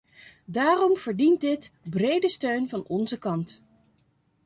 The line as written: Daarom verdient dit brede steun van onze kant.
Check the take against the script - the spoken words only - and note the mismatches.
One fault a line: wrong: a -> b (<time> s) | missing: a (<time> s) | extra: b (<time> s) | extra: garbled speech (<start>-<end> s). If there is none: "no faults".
no faults